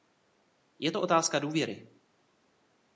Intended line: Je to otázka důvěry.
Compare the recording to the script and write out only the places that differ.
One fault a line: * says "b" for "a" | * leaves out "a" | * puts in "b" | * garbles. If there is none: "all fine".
all fine